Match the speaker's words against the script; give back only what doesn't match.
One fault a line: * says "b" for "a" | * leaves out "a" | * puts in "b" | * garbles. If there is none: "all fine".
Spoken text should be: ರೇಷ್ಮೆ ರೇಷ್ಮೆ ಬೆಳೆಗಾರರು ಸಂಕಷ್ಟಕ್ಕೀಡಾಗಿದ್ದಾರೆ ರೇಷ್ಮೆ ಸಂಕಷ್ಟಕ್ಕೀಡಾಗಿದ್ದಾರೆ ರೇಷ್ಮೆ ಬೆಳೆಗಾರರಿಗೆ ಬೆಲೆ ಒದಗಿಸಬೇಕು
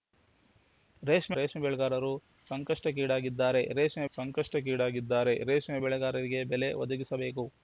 all fine